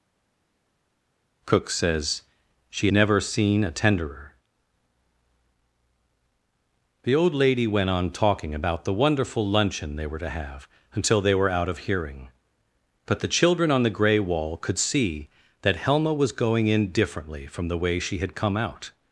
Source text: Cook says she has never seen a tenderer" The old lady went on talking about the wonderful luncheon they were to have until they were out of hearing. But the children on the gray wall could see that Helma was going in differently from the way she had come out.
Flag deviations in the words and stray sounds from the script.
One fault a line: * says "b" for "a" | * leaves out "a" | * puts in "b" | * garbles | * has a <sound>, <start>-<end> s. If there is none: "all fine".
* leaves out "has"